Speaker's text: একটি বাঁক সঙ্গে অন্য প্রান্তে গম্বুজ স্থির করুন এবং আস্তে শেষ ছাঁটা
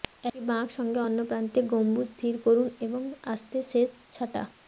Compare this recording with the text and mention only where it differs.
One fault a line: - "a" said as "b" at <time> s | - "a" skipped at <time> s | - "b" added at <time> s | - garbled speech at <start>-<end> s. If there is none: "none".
none